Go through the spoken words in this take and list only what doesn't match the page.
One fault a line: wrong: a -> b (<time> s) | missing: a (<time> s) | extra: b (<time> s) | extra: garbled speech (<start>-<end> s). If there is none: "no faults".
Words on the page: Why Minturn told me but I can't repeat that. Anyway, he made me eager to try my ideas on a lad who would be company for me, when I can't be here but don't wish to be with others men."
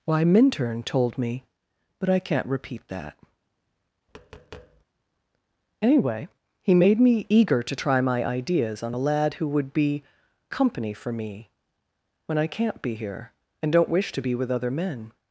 wrong: but -> and (13.6 s)
wrong: others -> other (14.5 s)